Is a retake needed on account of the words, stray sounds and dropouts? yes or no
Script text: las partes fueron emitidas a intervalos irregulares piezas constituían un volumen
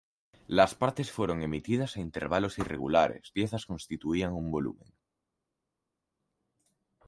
no